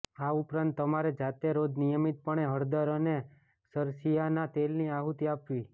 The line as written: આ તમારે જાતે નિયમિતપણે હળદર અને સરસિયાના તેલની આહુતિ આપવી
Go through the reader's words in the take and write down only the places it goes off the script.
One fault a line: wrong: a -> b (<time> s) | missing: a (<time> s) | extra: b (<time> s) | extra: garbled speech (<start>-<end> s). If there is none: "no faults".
extra: ઉપરાંત (0.3 s)
extra: રોજ (1.6 s)